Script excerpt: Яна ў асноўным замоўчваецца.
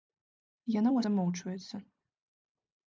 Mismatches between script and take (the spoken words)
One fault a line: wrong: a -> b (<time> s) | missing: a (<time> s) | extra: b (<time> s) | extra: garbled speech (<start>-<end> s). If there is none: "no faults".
missing: асноўным (1.0 s)